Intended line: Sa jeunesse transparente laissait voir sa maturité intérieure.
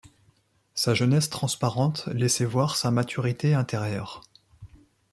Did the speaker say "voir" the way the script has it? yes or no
yes